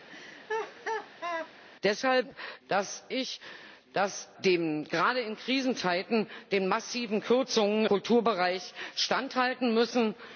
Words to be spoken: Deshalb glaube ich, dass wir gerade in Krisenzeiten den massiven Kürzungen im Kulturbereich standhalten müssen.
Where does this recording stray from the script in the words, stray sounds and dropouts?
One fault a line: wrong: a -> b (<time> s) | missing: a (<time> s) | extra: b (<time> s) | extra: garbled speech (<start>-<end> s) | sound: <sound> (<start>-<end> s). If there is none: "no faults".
sound: laugh (0.1-1.5 s)
wrong: glaube -> dass (2.7 s)
missing: wir (4.3 s)
missing: im (7.8 s)